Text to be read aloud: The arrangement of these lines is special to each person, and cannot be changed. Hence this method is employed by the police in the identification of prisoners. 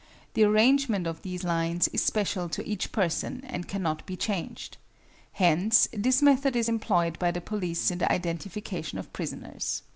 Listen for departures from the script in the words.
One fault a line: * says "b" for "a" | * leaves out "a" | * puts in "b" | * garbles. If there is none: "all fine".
all fine